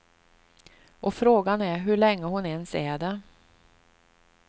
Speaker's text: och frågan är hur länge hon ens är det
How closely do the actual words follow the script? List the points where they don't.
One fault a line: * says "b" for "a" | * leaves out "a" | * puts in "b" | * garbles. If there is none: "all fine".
all fine